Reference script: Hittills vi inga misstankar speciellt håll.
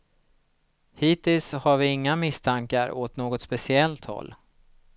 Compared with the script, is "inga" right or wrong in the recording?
right